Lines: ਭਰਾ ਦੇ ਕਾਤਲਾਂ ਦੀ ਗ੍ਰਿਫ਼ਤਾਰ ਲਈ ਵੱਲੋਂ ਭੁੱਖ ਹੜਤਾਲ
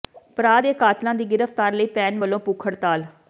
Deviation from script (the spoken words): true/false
true